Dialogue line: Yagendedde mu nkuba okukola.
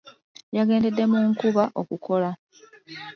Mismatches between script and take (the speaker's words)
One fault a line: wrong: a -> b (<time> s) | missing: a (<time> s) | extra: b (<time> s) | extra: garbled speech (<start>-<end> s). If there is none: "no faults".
no faults